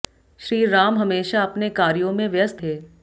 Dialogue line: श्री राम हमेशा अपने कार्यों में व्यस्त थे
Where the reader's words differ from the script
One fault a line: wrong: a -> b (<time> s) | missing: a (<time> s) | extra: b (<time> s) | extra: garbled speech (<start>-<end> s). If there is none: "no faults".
no faults